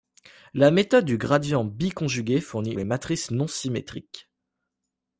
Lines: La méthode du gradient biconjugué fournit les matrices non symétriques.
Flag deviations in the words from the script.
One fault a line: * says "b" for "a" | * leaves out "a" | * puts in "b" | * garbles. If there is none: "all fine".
all fine